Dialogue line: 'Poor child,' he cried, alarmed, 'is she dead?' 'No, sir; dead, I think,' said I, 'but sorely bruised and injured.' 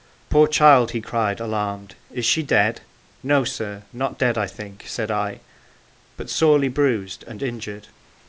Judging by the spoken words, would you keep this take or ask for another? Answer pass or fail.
fail